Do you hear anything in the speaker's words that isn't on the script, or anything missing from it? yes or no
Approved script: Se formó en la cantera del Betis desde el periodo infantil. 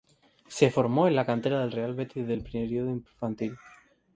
yes